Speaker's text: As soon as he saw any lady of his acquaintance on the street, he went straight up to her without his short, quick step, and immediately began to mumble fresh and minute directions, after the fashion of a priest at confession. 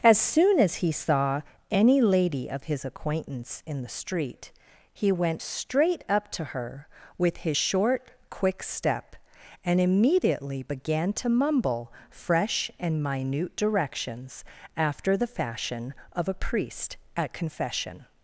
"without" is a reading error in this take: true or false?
true